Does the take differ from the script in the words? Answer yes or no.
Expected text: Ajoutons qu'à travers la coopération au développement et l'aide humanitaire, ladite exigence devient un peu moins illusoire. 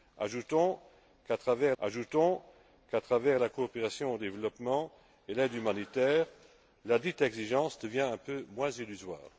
yes